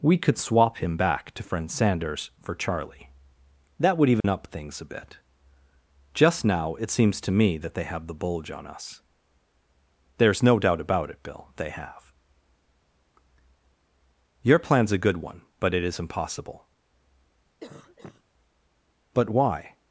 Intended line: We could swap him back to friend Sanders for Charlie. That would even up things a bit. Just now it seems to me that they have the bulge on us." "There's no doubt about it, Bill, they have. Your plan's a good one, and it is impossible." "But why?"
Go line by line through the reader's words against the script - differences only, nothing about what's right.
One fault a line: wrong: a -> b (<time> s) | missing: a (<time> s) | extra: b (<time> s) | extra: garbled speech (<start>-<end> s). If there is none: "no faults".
wrong: and -> but (15.6 s)